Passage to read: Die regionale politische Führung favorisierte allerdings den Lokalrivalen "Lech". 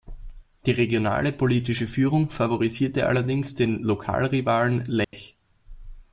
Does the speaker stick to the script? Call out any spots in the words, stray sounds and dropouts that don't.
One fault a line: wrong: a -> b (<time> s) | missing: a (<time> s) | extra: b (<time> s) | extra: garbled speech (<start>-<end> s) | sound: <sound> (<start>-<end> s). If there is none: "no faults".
sound: dropout (5.0-5.1 s)